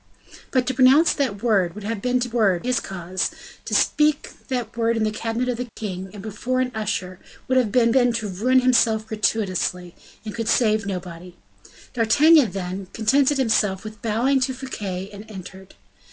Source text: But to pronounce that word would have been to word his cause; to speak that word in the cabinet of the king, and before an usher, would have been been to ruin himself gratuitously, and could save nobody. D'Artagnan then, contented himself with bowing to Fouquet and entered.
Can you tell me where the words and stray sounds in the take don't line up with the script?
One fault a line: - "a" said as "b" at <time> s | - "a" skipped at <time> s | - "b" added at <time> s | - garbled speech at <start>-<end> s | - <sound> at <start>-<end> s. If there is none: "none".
- dropout at 5.7-5.8 s